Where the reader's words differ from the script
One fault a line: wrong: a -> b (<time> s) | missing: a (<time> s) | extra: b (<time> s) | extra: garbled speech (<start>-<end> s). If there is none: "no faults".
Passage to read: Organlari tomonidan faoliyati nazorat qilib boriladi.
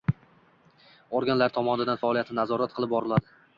no faults